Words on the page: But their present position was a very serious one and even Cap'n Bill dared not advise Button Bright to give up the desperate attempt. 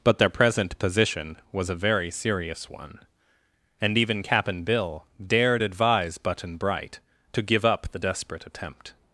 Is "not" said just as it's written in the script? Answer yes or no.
no